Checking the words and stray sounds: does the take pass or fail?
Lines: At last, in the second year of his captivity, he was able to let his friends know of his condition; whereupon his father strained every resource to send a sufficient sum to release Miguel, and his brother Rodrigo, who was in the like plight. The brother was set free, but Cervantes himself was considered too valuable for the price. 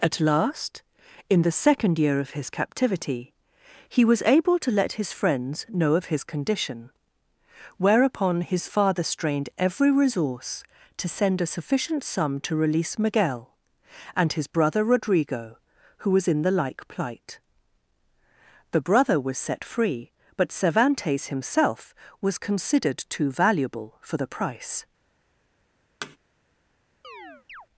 fail